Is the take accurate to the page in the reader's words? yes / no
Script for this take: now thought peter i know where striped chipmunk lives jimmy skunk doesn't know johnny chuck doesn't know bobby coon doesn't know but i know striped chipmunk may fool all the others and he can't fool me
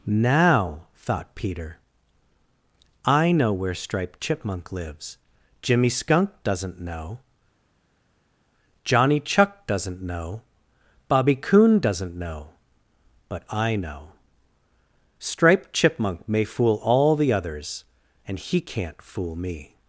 yes